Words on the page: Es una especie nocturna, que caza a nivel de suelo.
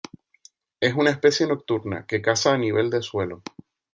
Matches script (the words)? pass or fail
pass